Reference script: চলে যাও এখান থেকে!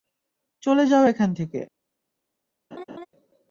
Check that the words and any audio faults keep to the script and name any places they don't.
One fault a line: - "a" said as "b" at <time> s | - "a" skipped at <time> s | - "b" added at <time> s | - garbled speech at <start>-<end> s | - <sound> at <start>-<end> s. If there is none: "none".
- laugh at 2.7-3.1 s